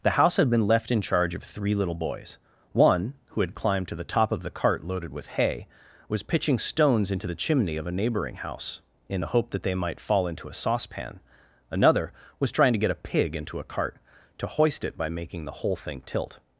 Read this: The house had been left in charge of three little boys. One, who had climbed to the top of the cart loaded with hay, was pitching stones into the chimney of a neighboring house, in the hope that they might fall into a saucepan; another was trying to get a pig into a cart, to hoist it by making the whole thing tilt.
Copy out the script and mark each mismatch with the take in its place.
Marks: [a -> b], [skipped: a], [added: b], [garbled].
The house had been left in charge of three little boys. One, who had climbed to the top of the cart loaded with hay, was pitching stones into the chimney of a neighboring house, in the hope that they might fall into a saucepan; another was trying to get a pig into a cart, to hoist it by making the whole thing tilt.